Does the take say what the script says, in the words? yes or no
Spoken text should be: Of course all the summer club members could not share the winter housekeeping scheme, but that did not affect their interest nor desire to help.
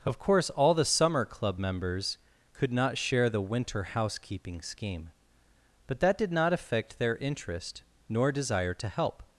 yes